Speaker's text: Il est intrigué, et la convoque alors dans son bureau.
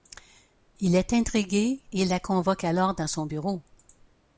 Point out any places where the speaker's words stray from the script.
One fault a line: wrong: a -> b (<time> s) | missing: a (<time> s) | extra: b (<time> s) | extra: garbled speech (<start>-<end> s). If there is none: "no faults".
no faults